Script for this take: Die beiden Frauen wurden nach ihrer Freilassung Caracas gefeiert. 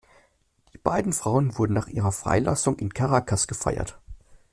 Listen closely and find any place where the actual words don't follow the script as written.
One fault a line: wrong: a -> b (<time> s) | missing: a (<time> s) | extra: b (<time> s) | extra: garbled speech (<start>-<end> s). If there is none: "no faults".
extra: in (2.7 s)